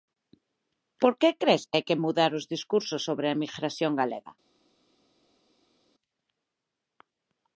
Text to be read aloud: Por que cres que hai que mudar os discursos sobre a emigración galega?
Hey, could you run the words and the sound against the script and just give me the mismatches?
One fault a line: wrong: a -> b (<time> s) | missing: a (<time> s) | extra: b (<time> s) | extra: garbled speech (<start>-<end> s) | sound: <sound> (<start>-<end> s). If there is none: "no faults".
no faults